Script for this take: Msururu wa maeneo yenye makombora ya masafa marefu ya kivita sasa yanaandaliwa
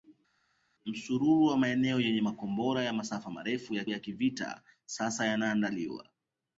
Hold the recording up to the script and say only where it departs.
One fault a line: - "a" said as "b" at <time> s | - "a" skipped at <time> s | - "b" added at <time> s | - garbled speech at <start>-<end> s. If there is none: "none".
- "ya" added at 3.9 s